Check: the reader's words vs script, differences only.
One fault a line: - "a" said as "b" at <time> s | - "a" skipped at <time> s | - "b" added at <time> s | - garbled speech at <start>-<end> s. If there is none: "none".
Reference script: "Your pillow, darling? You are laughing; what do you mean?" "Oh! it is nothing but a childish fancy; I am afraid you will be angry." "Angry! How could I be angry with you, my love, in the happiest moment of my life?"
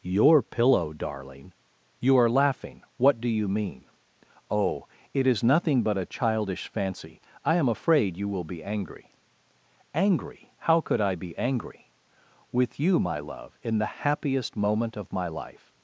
none